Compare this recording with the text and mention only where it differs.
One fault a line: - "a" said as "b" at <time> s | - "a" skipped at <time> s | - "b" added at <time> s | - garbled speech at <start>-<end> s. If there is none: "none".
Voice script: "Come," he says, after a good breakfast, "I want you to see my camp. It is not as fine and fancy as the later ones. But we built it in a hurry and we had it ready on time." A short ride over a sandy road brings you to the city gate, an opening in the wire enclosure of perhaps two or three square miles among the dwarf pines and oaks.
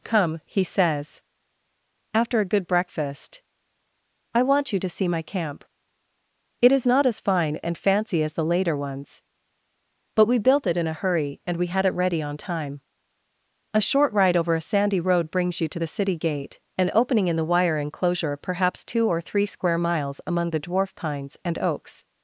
- "of" skipped at 18.4 s